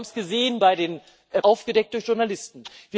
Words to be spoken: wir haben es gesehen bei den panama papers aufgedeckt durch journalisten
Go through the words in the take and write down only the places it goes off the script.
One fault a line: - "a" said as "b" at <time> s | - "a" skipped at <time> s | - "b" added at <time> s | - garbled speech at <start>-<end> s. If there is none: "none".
- "panama papers" skipped at 1.0 s